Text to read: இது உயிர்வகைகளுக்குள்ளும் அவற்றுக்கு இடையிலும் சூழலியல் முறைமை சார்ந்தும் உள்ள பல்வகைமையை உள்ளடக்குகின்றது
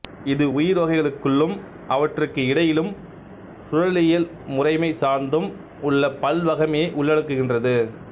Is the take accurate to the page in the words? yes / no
yes